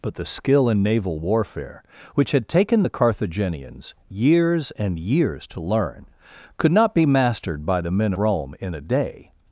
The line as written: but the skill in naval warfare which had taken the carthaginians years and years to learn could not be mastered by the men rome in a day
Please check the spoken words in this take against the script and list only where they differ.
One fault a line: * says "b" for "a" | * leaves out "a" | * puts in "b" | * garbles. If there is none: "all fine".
all fine